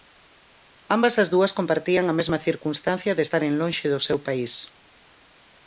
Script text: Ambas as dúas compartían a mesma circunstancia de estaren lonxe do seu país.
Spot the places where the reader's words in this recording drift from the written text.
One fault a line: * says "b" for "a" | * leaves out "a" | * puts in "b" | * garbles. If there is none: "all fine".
all fine